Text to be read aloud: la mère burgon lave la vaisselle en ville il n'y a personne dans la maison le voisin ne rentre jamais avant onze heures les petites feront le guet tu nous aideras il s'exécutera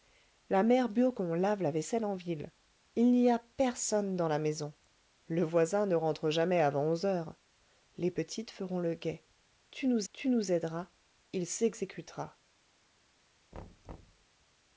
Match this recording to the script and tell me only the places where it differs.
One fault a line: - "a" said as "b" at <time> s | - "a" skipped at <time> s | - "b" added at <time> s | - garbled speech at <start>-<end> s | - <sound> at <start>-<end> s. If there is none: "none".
- "tu nous" added at 10.1 s
- thud at 13.5-14.3 s